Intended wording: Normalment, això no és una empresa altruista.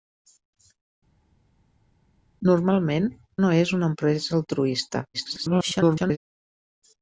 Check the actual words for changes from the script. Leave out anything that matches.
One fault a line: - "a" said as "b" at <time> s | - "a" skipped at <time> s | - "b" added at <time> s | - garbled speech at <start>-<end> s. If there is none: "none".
- "això" skipped at 3.1 s
- garbled speech at 5.1-6.2 s